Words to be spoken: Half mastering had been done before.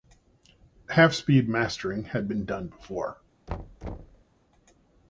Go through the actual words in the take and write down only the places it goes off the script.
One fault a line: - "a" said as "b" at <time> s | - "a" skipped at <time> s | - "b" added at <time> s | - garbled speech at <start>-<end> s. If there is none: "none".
- "speed" added at 1.1 s